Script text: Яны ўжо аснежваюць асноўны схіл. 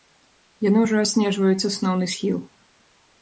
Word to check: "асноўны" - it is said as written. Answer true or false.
true